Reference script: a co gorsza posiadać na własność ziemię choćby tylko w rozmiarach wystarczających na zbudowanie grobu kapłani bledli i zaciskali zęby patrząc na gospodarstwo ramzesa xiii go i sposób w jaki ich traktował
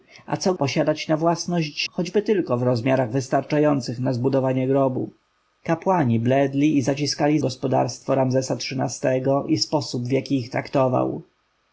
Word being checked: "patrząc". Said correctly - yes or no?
no